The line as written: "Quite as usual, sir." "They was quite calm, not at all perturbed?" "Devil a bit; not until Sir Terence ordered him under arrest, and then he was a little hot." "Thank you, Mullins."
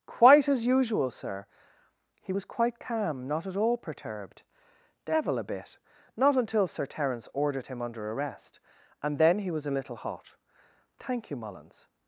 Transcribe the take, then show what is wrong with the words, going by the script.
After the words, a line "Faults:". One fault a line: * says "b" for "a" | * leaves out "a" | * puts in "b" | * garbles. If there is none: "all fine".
"Quite as usual, sir." "He was quite calm, not at all perturbed?" "Devil a bit; not until Sir Terence ordered him under arrest, and then he was a little hot." "Thank you, Mullins."
Faults:
* says "He" for "They"